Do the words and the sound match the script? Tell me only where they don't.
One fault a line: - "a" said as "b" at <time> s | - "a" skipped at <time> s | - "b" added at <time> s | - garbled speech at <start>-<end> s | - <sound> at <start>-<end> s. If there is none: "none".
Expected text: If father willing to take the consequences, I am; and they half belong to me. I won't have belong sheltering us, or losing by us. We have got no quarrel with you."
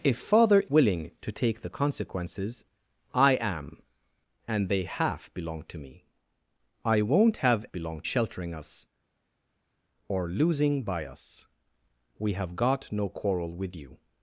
none